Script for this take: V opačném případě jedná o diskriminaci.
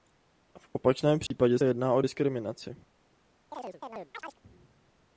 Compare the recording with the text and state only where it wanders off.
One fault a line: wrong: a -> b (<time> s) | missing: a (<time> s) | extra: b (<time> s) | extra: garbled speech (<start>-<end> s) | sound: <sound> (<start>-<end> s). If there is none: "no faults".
sound: dropout (1.3-1.3 s)
sound: chirp (3.5-4.4 s)